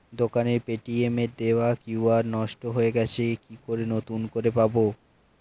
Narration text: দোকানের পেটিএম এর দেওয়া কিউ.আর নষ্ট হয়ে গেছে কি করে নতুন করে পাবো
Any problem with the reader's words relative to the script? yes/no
no